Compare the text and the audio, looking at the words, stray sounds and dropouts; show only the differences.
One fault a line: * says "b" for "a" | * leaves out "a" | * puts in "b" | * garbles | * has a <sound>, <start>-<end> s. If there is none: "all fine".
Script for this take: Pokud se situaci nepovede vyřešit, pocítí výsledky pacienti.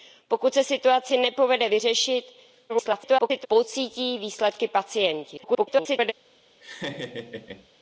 * garbles
* garbles
* has a laugh, 6.6-7.7 s